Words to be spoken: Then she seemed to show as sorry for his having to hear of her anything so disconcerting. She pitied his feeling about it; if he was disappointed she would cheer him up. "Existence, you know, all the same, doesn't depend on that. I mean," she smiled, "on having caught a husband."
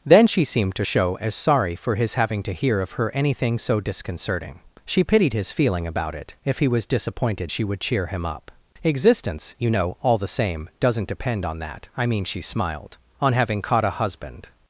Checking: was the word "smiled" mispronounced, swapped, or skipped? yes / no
no